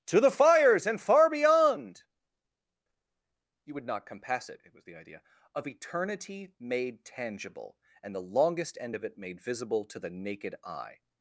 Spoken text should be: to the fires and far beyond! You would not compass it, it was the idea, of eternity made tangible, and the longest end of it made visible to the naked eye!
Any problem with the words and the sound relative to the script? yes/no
no